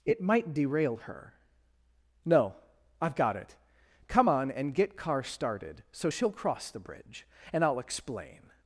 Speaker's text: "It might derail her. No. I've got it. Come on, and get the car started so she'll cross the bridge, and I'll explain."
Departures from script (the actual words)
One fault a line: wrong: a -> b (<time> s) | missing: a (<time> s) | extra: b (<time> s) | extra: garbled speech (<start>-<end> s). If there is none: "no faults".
missing: the (5.0 s)